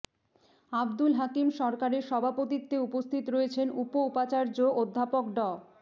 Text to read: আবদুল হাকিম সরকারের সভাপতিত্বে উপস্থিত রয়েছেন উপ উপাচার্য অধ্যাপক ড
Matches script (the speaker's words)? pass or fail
pass